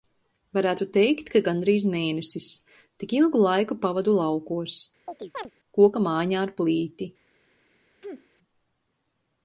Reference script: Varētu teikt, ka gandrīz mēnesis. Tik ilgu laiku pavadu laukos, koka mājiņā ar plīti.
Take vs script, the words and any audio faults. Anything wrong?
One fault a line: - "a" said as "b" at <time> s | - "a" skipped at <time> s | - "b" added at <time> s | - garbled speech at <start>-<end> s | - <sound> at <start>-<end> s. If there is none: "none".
- chirp at 5.1-5.5 s
- sneeze at 8.0-8.3 s